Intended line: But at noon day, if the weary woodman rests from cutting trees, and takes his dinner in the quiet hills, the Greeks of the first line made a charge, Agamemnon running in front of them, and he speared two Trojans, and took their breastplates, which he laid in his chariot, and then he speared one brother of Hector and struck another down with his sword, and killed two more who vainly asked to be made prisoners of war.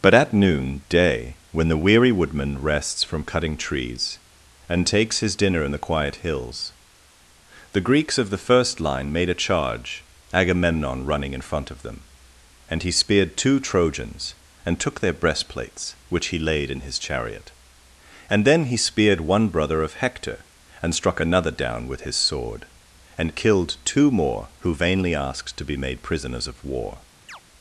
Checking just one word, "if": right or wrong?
wrong